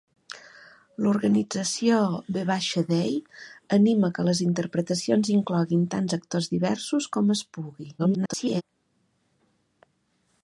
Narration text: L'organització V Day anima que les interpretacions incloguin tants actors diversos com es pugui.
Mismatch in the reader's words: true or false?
true